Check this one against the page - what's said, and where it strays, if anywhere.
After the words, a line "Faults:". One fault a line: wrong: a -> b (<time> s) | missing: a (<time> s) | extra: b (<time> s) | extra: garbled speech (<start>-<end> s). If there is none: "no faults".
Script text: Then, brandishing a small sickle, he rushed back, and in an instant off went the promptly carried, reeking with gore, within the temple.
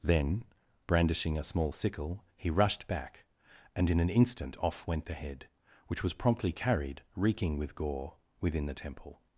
Then, brandishing a small sickle, he rushed back, and in an instant off went the head, which was promptly carried, reeking with gore, within the temple.
Faults:
extra: head which was (5.1 s)